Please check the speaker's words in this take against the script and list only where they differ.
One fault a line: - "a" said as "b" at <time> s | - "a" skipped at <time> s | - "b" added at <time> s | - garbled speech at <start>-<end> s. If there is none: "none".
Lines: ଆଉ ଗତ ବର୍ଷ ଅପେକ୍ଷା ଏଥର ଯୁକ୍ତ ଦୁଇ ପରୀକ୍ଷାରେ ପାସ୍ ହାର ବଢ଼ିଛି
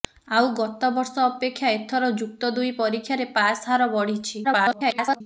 - garbled speech at 4.4-5.2 s